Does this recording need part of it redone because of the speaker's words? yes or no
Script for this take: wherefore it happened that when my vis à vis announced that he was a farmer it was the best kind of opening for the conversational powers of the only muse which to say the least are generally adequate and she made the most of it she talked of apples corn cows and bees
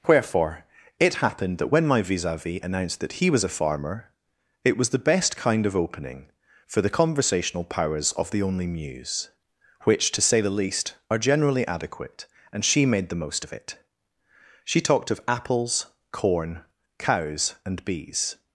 no